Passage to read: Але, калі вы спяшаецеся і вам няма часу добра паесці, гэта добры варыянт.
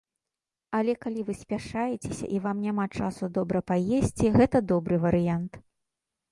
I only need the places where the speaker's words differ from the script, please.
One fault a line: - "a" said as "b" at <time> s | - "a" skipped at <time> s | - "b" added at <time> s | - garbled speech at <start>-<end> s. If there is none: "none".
none